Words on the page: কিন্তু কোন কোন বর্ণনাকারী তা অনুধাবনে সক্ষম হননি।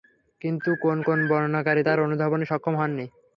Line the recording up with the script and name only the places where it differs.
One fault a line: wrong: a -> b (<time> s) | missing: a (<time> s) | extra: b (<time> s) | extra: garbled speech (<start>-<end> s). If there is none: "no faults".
no faults